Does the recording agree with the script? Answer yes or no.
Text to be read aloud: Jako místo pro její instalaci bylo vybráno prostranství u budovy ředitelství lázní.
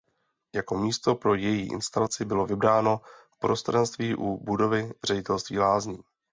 yes